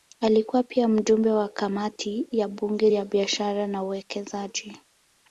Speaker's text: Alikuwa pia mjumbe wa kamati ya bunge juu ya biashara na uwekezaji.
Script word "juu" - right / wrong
wrong